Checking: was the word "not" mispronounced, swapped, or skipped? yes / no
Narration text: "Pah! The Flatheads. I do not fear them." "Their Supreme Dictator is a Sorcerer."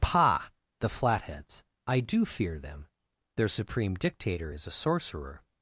yes